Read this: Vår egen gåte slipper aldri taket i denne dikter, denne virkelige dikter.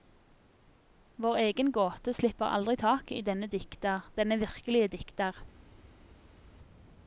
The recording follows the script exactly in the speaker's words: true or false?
true